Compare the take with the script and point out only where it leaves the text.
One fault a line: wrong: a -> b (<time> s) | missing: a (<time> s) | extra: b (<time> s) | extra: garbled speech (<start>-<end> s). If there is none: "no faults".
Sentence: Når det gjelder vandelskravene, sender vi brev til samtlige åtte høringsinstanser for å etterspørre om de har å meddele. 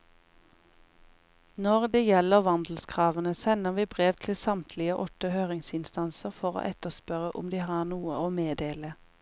extra: noe (7.9 s)